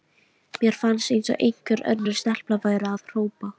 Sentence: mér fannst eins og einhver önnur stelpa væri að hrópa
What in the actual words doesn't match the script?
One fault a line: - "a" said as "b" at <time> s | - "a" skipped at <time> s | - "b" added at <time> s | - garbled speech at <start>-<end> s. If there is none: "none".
none